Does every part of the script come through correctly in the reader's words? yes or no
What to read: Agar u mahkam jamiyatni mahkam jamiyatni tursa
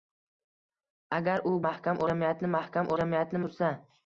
yes